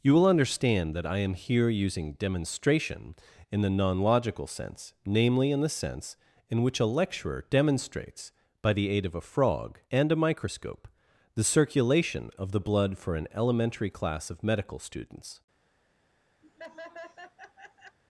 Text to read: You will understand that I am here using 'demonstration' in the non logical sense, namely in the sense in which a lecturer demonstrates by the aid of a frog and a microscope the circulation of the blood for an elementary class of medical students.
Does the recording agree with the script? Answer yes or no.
yes